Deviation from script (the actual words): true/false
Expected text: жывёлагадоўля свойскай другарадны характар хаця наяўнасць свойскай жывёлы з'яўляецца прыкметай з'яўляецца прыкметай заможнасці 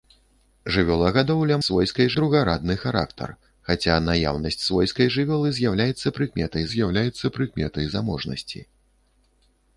false